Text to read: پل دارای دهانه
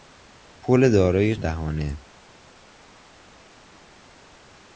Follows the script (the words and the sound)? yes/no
yes